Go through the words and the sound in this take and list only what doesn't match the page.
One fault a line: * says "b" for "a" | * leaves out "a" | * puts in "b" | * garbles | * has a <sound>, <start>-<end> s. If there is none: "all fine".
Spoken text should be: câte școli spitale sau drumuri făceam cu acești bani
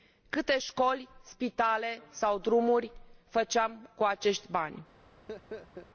* has a laugh, 5.3-5.9 s